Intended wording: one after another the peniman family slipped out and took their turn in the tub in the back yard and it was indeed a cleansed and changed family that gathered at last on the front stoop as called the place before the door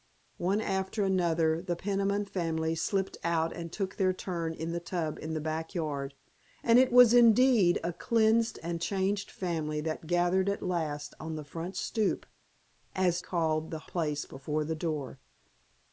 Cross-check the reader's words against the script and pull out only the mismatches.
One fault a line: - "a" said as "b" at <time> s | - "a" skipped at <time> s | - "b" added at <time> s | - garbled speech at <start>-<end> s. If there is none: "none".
none